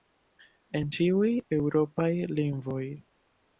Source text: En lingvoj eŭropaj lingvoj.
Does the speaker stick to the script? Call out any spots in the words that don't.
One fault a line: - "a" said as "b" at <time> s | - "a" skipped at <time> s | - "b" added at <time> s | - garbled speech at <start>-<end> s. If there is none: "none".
- "lingvoj" said as "ĉiuj" at 1.0 s